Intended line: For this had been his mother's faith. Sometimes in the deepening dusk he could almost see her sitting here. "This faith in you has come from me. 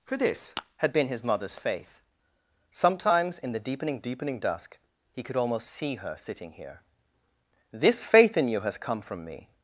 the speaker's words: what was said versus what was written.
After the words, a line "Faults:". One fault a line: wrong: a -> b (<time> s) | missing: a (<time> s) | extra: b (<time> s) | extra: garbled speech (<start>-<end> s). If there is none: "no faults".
For this had been his mother's faith. Sometimes in the deepening deepening dusk he could almost see her sitting here. "This faith in you has come from me.
Faults:
extra: deepening (4.0 s)